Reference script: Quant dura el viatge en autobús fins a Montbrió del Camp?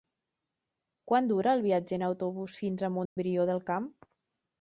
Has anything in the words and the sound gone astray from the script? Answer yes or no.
yes